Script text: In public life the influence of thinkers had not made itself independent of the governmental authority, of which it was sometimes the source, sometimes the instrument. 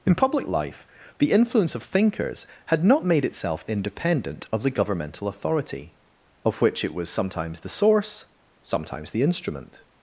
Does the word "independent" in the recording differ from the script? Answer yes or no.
no